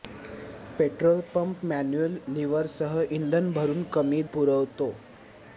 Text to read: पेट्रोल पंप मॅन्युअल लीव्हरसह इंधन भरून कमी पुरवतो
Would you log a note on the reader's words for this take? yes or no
no